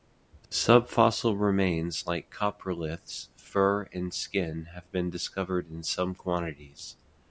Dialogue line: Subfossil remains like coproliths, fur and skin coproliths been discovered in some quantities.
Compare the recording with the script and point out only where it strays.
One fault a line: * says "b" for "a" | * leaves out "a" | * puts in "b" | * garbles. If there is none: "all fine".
* says "have" for "coproliths"